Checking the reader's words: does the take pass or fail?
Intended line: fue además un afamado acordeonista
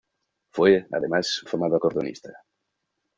fail